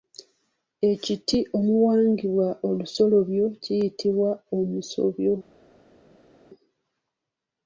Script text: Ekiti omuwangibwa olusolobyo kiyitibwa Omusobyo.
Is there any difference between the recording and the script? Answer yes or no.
no